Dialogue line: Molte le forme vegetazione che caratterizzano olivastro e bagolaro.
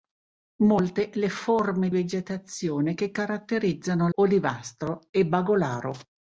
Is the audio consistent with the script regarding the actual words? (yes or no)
yes